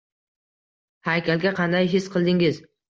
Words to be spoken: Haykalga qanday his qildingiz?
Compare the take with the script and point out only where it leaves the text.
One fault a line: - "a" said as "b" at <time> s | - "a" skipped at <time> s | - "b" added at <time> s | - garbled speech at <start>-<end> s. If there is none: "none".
none